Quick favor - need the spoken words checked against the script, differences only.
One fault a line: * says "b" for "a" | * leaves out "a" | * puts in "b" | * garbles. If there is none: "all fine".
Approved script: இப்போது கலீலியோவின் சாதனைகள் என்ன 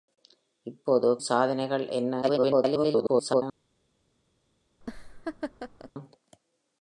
* leaves out "கலீலியோவின்"
* garbles